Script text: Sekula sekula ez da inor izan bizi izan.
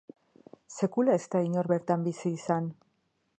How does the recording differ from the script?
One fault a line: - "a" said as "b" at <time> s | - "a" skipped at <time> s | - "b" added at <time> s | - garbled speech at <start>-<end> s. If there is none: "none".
- "sekula" skipped at 1.2 s
- "izan" said as "bertan" at 1.7 s